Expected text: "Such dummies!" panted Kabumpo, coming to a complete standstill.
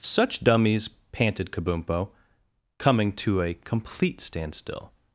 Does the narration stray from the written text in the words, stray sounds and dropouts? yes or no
no